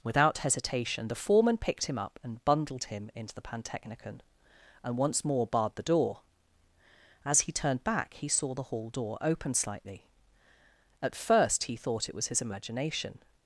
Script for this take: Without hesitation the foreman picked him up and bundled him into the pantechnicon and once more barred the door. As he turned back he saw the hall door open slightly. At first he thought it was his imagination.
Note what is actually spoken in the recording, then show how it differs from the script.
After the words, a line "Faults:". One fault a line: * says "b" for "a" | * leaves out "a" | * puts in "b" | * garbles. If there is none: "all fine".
Without hesitation the foreman picked him up and bundled him into the pantechnicon and once more barred the door. As he turned back he saw the hall door open slightly. At first he thought it was his imagination.
Faults:
all fine